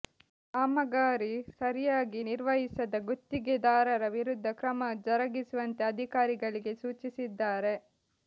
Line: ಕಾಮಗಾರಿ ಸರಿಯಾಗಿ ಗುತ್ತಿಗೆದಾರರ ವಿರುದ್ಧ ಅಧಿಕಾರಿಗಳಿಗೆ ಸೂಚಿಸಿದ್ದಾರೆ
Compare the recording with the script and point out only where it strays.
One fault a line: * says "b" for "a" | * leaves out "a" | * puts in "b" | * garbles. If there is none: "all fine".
* puts in "ನಿರ್ವಹಿಸದ"
* puts in "ಕ್ರಮ ಜರುಗಿಸುವಂತೆ"